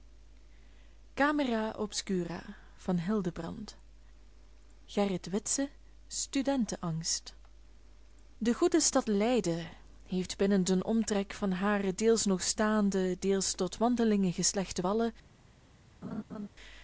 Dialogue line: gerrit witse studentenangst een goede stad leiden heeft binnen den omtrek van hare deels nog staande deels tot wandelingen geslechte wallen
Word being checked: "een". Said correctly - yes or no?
no